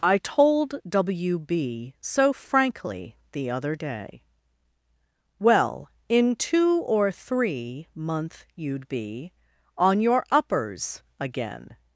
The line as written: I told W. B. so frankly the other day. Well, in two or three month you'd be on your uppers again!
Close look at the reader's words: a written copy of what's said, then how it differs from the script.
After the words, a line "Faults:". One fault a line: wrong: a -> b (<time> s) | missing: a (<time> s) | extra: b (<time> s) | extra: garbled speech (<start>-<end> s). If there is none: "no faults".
I told W. B. so frankly the other day. Well, in two or three month you'd be on your uppers again!
Faults:
no faults